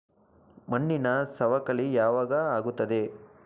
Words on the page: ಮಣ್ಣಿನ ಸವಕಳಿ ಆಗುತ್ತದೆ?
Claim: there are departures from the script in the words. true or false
true